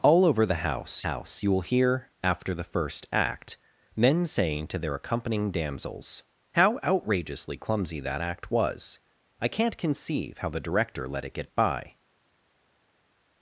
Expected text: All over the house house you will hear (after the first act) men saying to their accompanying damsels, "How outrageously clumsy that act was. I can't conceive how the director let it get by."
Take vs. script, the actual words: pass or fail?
pass